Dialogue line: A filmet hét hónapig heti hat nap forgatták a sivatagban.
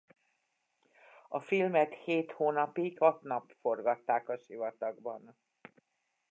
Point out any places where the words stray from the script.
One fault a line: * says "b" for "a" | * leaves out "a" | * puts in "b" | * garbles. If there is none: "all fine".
* leaves out "heti"